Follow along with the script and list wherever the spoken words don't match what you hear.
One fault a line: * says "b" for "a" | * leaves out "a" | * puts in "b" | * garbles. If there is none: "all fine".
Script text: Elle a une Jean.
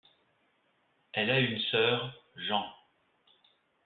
* puts in "sœur"